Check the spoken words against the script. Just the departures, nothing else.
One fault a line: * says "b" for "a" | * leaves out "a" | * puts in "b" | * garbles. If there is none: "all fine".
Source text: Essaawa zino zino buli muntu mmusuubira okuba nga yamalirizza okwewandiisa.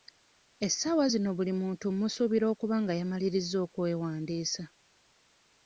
* leaves out "zino"